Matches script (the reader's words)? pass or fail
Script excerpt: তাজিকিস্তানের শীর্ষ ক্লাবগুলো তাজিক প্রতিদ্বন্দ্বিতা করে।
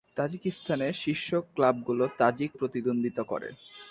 pass